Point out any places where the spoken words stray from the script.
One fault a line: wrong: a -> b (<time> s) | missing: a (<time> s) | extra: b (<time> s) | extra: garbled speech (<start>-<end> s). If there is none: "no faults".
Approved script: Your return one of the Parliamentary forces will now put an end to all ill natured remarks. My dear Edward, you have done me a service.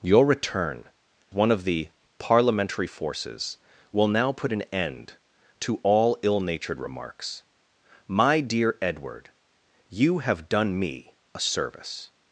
no faults